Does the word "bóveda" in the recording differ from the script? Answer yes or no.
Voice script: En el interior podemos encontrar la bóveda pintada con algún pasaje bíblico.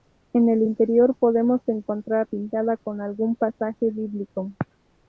yes